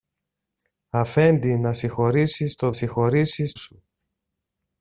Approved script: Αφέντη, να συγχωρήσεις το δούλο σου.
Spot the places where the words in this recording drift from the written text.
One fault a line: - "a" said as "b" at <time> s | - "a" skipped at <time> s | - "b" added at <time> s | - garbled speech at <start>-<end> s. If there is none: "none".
- "δούλο" said as "συγχωρήσεις" at 2.7 s